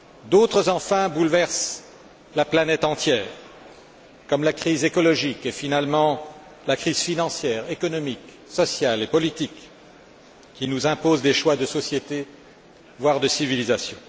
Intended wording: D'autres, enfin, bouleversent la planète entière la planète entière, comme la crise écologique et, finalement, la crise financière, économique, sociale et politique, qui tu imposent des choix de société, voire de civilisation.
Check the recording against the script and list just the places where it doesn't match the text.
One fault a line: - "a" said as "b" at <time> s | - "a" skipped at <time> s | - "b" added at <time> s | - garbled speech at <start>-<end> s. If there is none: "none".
- "la planète entière" skipped at 3.2 s
- "tu" said as "nous" at 10.7 s